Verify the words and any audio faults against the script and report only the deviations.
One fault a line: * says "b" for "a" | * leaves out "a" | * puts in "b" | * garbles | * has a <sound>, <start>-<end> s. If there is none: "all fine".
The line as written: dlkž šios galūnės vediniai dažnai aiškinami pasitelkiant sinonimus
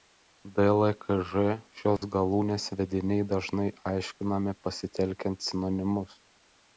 * has a dropout, 2.0-2.0 s